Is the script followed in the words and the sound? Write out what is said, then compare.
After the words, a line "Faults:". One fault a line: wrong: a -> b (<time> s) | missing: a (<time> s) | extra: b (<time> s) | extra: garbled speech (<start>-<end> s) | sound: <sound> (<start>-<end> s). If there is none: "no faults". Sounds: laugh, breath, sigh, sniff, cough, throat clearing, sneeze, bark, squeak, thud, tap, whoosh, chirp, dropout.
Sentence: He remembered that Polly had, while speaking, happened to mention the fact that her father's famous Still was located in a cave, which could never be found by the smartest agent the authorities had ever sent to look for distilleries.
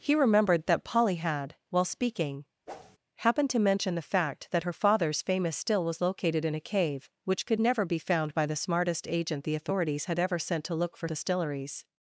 He remembered that Polly had, while speaking, happened to mention the fact that her father's famous Still was located in a cave, which could never be found by the smartest agent the authorities had ever sent to look for distilleries.
Faults:
sound: whoosh (2.7-3.0 s)